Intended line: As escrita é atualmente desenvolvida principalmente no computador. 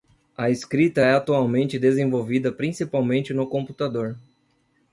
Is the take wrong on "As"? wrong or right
wrong